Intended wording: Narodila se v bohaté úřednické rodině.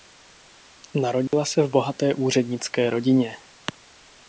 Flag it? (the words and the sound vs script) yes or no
yes